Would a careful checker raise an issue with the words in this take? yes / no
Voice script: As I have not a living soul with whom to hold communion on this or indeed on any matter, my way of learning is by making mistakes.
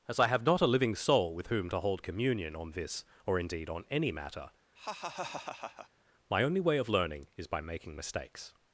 yes